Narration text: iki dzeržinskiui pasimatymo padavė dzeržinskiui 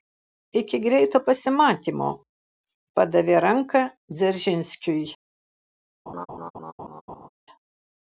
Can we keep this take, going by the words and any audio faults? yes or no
no